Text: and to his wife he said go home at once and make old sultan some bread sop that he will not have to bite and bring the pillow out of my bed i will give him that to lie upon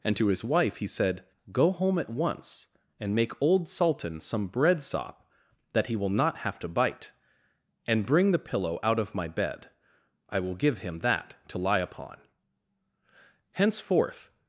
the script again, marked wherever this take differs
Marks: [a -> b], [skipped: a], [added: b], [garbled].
and to his wife he said go home at once and make old sultan some bread sop that he will not have to bite and bring the pillow out of my bed i will give him that to lie upon [added: henceforth]